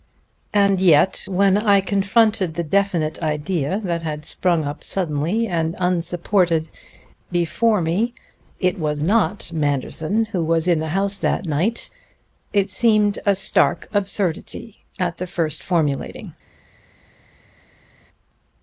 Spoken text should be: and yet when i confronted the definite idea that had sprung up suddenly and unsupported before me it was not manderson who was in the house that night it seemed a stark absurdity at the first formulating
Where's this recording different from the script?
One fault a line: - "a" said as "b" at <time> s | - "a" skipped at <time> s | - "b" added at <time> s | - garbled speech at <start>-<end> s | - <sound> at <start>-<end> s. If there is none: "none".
none